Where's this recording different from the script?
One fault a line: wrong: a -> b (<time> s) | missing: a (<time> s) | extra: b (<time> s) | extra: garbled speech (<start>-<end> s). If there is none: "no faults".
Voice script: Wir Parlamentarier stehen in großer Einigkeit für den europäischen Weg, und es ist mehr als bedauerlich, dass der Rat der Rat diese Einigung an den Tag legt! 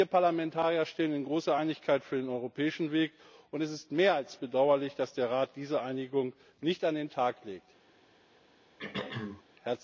missing: der Rat (5.6 s)
extra: nicht (6.6 s)